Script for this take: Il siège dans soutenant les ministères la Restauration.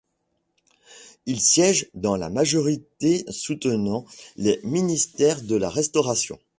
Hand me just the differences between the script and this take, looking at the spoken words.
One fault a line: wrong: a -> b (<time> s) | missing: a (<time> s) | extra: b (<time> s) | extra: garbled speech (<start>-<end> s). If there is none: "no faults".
extra: la majorité (2.1 s)
extra: de (5.4 s)